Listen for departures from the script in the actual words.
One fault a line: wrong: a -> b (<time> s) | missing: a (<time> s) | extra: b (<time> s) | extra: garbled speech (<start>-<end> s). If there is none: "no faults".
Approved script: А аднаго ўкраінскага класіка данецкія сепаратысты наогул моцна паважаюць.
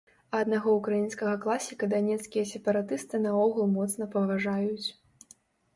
no faults